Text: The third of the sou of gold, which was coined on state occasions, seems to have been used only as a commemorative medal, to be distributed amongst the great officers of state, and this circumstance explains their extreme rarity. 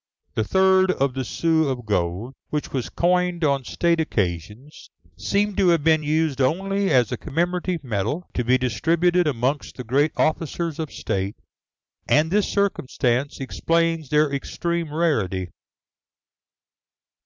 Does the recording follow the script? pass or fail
pass